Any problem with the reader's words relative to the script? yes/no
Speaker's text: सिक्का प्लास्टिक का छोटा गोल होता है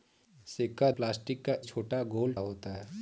no